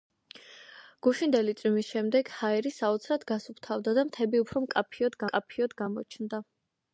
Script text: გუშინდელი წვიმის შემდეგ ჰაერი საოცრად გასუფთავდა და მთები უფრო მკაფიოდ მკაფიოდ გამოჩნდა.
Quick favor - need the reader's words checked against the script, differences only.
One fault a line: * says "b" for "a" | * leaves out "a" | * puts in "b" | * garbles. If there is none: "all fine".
all fine